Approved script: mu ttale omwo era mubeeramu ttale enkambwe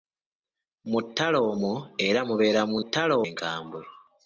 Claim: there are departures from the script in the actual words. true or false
false